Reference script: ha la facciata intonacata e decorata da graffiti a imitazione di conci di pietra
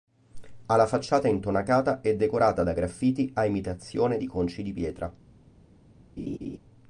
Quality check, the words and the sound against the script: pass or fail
fail